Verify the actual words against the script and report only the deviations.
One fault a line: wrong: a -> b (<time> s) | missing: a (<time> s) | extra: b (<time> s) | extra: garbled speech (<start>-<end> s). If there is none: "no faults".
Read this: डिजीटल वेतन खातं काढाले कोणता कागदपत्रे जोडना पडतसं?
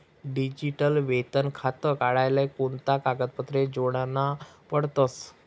no faults